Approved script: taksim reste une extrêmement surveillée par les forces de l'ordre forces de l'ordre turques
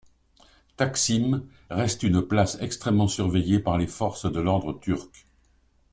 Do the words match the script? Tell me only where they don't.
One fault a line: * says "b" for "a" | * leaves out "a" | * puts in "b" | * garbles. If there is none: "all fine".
* puts in "place"
* leaves out "forces de l'ordre"